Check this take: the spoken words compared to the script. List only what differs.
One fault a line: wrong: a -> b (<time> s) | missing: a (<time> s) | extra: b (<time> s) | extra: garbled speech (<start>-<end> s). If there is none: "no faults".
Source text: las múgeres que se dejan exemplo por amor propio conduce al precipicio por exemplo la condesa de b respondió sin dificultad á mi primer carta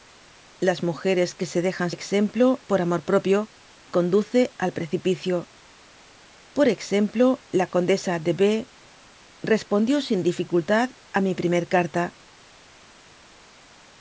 no faults